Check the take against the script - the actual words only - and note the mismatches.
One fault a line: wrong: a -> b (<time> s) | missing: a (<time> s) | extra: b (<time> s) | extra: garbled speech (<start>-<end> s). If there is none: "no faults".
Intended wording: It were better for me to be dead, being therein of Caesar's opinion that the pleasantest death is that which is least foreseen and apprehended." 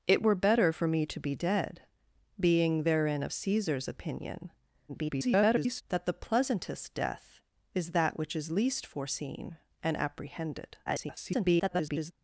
extra: garbled speech (4.9-5.8 s)
extra: garbled speech (10.9-12.1 s)